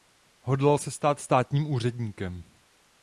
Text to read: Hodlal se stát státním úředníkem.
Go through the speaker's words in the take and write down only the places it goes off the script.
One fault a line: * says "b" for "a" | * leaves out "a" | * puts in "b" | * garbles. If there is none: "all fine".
all fine